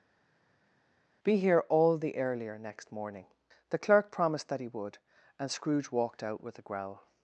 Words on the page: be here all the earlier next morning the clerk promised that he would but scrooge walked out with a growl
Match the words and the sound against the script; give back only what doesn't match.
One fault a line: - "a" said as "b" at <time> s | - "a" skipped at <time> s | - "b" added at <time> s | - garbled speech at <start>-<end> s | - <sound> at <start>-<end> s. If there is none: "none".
- "but" said as "and" at 5.4 s